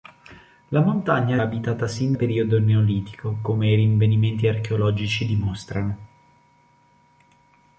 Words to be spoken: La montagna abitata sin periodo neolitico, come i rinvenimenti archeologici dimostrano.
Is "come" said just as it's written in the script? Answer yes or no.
yes